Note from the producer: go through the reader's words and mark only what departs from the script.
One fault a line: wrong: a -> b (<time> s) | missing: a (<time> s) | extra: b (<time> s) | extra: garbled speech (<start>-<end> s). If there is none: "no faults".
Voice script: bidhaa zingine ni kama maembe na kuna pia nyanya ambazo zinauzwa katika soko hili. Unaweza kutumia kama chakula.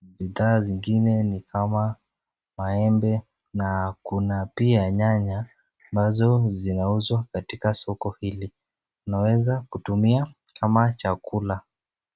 no faults